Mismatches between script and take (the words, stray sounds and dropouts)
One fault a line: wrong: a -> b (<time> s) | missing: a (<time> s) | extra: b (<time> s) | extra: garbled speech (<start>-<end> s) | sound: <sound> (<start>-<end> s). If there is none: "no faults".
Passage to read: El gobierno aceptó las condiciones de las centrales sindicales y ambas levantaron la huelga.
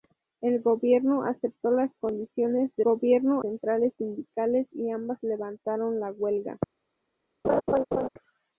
wrong: las -> gobierno (2.8 s)
sound: laugh (7.4-8.1 s)